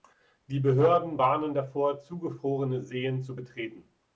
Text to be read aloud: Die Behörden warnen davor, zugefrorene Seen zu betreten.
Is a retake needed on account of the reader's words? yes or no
no